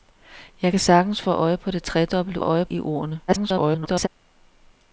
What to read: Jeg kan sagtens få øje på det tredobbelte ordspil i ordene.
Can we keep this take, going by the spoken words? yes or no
no